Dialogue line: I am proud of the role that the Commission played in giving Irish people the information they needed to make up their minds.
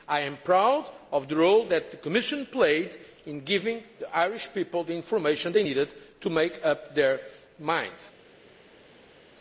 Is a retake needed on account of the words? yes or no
yes